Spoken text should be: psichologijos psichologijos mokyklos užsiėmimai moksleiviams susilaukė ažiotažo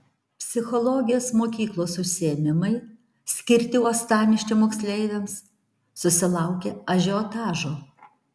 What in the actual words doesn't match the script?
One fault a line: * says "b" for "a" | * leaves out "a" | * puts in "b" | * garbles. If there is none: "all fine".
* leaves out "psichologijos"
* puts in "skirti uostamiesčio"